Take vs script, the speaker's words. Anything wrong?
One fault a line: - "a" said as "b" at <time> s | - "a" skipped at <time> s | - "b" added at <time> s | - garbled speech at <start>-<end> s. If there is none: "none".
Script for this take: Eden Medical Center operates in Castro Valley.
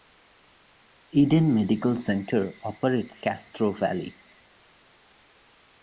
- "in" skipped at 3.2 s